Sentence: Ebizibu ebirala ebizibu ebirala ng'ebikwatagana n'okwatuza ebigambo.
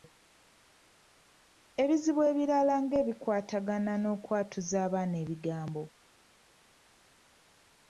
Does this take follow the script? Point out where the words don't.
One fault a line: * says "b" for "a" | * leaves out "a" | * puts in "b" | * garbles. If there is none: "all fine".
* leaves out "ebizibu ebirala"
* puts in "abaana"